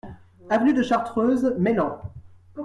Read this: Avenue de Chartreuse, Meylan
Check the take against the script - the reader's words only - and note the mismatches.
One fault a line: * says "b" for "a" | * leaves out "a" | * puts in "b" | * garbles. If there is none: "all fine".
all fine